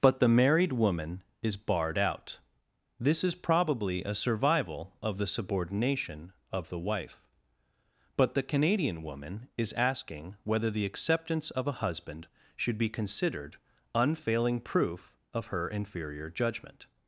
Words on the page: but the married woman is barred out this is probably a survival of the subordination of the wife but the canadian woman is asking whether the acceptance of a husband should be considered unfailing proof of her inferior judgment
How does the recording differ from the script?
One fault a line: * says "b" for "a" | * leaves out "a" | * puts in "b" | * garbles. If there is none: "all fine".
all fine